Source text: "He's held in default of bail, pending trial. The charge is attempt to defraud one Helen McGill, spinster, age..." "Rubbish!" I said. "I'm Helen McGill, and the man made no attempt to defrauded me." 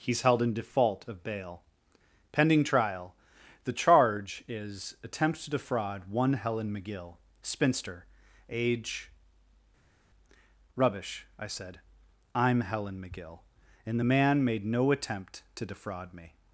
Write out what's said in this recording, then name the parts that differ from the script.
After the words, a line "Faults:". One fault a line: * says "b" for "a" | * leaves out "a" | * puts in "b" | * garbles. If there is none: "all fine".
"He's held in default of bail, pending trial. The charge is attempt to defraud one Helen McGill, spinster, age..." "Rubbish!" I said. "I'm Helen McGill, and the man made no attempt to defraud me."
Faults:
* says "defraud" for "defrauded"